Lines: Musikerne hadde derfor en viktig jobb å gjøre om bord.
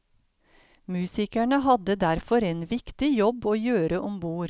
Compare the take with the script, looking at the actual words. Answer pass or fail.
pass